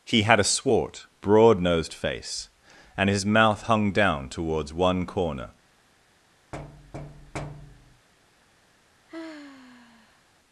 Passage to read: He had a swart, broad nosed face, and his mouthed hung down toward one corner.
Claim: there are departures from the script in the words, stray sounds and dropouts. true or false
true